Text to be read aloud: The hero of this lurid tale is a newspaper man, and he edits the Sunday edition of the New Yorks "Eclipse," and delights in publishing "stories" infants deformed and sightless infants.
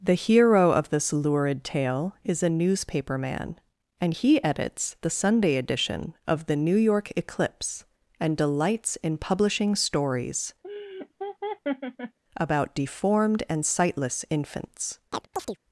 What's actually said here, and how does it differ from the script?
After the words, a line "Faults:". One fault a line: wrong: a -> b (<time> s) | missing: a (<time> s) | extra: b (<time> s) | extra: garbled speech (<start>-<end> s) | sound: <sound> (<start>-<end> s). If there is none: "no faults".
The hero of this lurid tale is a newspaper man, and he edits the Sunday edition of the New York "Eclipse," and delights in publishing "stories" about deformed and sightless infants.
Faults:
wrong: Yorks -> York (6.7 s)
sound: laugh (10.6-12.2 s)
wrong: infants -> about (12.3 s)
sound: chirp (15.1-15.6 s)